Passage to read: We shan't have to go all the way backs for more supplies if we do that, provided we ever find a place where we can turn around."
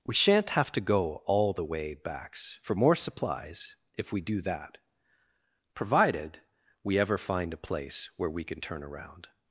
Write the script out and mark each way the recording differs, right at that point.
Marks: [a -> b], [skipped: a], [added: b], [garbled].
We shan't have to go all the way backs for more supplies if we do that, provided we ever find a place where we can turn around."